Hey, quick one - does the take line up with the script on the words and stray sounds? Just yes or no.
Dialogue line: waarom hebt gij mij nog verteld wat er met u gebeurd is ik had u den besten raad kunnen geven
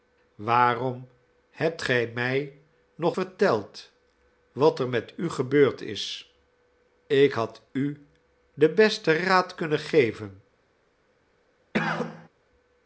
no